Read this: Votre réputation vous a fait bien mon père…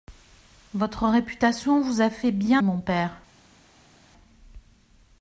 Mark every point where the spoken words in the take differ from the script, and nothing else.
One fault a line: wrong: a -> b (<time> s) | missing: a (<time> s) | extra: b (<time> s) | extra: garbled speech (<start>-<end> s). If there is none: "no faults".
no faults